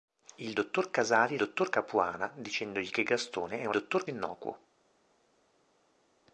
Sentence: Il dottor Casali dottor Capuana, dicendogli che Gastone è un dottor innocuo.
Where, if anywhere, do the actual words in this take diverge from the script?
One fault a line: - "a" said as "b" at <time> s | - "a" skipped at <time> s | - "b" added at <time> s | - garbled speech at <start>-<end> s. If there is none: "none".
none